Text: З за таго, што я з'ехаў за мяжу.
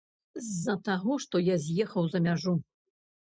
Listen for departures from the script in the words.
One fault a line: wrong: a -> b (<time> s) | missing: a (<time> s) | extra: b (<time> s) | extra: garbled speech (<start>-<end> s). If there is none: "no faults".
no faults